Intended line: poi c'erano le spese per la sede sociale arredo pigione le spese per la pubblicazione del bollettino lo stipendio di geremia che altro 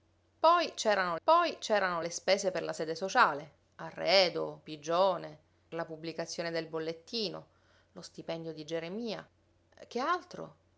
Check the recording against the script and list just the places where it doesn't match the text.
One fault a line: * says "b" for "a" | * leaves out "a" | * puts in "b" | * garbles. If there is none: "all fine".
* puts in "poi c'erano"
* leaves out "le spese per"